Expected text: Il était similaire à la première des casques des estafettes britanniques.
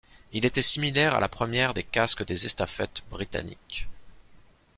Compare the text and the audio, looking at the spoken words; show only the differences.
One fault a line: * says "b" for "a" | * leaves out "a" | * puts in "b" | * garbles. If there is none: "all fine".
all fine